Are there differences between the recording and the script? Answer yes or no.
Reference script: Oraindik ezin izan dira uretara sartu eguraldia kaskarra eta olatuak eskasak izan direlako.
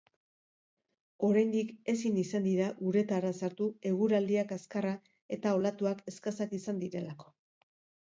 no